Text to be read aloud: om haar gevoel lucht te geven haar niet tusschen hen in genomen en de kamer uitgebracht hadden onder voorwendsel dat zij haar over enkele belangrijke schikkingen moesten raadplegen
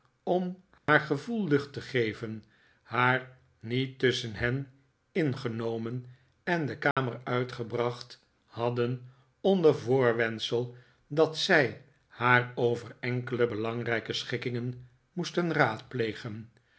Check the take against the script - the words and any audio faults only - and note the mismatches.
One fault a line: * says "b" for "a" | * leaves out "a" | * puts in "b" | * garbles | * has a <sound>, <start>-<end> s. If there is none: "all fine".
* has a dropout, 0.8-0.9 s
* has a dropout, 6.9-7.0 s